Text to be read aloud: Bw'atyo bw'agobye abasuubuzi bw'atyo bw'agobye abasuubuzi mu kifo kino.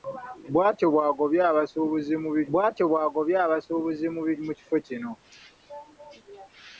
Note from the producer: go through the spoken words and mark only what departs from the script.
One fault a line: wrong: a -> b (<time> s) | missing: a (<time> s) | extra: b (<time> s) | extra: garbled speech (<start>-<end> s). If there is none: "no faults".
no faults